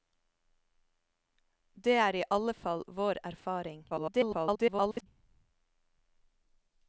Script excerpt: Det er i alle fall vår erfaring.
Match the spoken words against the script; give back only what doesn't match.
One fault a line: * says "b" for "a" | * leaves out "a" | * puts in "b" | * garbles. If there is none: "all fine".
* garbles